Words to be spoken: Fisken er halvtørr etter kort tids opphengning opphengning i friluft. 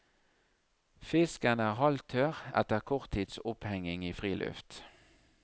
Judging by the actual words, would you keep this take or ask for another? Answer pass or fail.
fail